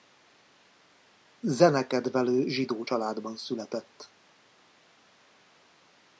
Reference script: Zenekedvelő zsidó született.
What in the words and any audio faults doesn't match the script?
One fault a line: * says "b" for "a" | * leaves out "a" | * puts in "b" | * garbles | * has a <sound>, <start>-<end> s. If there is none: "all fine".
* puts in "családban"